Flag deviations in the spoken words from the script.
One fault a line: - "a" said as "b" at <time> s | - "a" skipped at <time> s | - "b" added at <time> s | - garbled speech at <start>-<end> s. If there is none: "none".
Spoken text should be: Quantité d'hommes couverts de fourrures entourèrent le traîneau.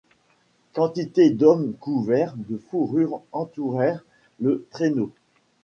none